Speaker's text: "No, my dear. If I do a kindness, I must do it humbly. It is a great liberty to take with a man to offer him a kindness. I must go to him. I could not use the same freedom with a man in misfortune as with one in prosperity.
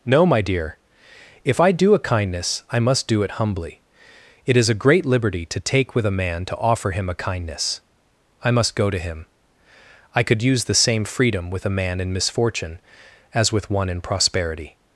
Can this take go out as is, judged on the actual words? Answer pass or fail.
fail